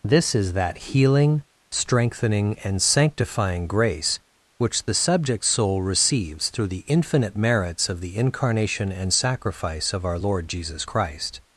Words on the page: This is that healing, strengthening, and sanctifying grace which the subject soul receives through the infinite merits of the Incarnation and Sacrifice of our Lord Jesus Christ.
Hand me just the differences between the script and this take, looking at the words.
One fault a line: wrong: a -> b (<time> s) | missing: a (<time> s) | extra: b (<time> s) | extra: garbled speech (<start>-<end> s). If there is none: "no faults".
no faults